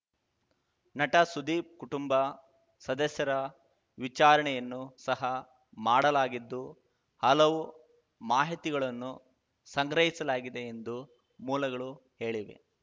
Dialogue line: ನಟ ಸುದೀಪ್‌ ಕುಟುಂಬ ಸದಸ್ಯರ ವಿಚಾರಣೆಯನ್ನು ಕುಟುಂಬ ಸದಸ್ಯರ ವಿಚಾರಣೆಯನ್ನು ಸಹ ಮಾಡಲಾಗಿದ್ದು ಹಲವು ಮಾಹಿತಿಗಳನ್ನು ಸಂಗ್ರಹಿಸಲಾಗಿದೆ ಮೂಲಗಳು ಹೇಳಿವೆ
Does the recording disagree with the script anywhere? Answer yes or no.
yes